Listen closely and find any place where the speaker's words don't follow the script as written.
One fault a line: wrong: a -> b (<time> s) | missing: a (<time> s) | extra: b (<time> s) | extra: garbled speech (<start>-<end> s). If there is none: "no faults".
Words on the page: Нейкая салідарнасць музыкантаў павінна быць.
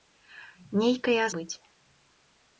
missing: салідарнасць музыкантаў павінна (1.2 s)